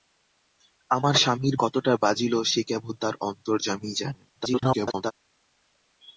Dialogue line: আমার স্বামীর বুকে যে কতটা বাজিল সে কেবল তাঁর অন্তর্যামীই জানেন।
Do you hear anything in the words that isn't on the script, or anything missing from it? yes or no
yes